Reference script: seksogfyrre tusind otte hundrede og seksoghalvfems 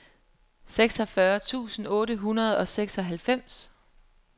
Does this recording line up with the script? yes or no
yes